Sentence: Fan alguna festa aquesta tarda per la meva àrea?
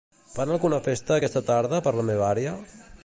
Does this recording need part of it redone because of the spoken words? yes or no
no